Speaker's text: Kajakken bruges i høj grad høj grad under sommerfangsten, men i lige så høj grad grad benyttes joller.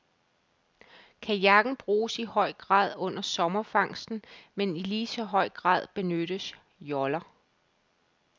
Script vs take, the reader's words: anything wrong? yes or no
yes